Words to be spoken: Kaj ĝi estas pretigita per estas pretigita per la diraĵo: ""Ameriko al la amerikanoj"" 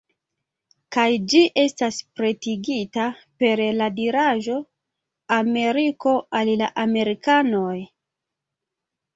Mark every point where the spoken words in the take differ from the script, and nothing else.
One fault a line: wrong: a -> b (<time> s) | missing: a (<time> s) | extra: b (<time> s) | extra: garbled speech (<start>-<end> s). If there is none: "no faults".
missing: estas pretigita per (3.6 s)